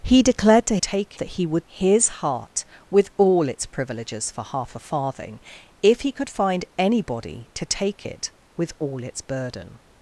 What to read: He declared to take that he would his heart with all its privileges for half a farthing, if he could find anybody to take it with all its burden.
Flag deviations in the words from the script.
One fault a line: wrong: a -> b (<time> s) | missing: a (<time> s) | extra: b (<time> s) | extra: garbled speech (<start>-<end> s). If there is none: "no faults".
no faults